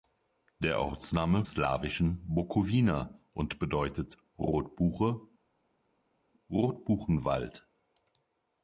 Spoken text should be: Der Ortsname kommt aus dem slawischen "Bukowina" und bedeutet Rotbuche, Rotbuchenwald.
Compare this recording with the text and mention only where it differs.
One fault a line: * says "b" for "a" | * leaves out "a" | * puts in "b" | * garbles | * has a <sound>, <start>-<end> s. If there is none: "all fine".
* leaves out "kommt aus dem"